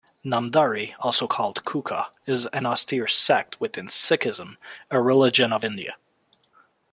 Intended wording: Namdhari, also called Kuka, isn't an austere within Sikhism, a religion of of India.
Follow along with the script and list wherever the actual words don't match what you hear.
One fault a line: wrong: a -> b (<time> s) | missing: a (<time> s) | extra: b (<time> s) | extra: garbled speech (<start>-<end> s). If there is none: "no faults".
wrong: isn't -> is (2.2 s)
extra: sect (3.1 s)
missing: of (5.7 s)